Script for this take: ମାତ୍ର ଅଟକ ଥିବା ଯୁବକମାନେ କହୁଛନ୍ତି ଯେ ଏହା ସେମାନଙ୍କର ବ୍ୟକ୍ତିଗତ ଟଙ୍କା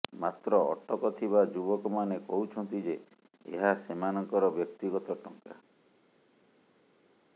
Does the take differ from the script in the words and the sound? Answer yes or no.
no